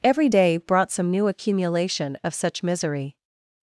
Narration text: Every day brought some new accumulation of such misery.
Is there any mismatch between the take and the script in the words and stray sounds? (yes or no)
no